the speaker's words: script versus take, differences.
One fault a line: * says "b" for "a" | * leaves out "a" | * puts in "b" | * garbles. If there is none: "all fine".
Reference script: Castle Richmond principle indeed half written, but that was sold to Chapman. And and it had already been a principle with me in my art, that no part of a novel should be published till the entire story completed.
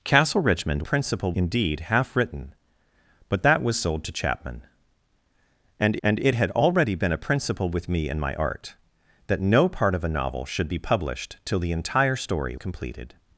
all fine